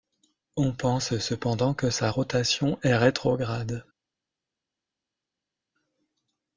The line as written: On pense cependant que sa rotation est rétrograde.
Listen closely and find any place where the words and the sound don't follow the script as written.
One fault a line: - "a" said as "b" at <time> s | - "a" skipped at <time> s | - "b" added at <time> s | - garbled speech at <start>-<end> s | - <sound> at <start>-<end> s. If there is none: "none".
none